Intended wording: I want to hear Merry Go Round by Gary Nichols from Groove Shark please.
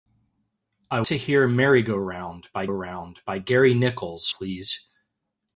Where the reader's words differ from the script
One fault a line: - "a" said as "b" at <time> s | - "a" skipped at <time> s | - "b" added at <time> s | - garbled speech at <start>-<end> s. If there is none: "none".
- "want" skipped at 1.0 s
- "Round by" added at 2.7 s
- "from Groove Shark" skipped at 4.3 s